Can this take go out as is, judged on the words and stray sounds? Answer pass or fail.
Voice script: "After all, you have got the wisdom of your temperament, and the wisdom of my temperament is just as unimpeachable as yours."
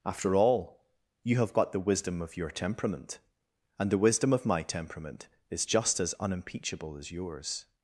pass